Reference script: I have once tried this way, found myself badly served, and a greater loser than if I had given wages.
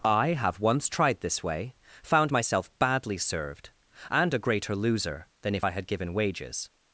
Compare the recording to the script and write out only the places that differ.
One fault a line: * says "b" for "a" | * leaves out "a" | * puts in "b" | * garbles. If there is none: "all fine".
all fine